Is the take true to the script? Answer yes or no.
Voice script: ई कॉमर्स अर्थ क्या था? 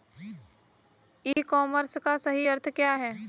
no